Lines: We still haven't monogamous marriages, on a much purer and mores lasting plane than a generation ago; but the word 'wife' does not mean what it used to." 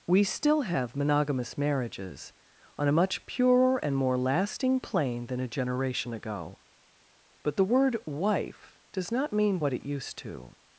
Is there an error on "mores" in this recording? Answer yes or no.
yes